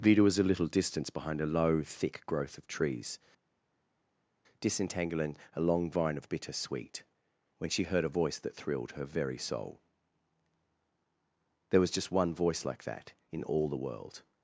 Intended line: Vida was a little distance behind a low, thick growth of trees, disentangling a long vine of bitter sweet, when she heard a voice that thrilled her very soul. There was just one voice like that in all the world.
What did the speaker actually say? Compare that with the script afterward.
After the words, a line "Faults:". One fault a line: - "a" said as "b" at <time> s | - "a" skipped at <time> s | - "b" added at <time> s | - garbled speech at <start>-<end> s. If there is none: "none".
Vida was a little distance behind a low, thick growth of trees, disentangling a long vine of bitter sweet, when she heard a voice that thrilled her very soul. There was just one voice like that in all the world.
Faults:
none